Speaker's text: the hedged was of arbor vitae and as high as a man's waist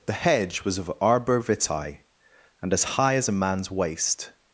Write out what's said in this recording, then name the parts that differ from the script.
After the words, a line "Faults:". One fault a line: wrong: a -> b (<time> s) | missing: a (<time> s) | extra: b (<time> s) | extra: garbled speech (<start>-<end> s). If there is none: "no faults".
the hedge was of arbor vitae and as high as a man's waist
Faults:
wrong: hedged -> hedge (0.1 s)